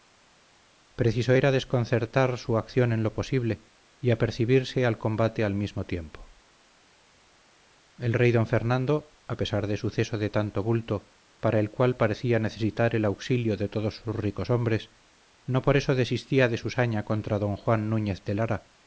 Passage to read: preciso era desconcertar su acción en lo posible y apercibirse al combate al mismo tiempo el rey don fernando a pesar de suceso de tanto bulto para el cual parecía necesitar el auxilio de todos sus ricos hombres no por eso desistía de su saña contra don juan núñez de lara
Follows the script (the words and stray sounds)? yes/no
yes